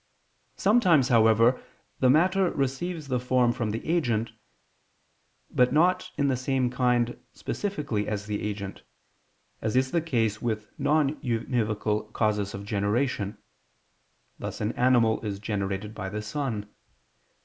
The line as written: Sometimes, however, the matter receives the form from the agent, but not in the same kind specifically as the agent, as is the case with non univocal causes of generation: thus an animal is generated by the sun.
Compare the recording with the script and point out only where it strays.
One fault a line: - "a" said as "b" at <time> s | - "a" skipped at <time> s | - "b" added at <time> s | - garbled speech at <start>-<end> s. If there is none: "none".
none